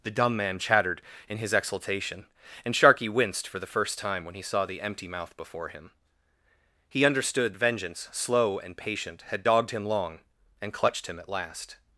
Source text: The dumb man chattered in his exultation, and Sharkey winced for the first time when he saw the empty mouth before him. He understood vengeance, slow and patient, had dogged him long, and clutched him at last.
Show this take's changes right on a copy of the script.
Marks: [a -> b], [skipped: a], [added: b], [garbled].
The dumb man chattered in his exultation, and Sharkey winced for the first time when he saw the empty mouth before him. He understood vengeance, slow and patient, had dogged him long, and clutched him at last.